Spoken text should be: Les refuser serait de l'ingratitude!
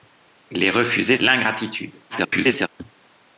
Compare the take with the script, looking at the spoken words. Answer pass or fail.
fail